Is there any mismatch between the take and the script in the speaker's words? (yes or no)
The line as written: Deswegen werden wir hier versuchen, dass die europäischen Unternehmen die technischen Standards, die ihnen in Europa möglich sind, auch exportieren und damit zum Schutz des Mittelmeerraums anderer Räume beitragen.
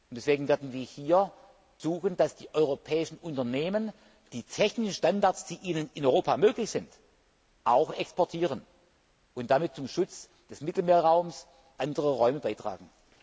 no